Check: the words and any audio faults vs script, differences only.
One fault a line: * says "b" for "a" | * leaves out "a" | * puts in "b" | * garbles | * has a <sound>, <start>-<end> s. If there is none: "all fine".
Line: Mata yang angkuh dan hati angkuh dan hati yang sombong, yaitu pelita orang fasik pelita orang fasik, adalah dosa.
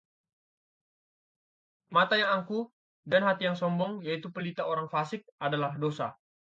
* leaves out "angkuh dan hati"
* leaves out "pelita orang fasik"